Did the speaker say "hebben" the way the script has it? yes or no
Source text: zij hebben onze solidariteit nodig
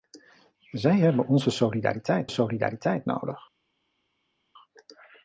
yes